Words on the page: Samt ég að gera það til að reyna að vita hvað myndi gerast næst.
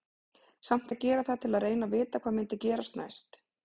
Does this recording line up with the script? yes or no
yes